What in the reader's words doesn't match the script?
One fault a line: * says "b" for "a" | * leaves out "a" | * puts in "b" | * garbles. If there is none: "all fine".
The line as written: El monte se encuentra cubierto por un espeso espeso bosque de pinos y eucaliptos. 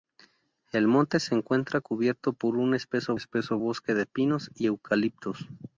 all fine